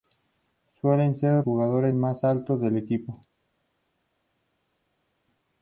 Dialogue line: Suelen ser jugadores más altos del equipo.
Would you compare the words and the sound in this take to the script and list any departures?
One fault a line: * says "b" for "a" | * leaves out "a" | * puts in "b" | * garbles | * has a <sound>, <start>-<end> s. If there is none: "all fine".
all fine